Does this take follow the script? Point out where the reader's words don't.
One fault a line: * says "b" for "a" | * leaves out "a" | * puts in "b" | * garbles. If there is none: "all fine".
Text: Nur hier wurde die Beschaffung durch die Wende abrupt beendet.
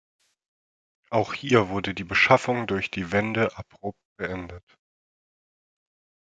* says "Auch" for "Nur"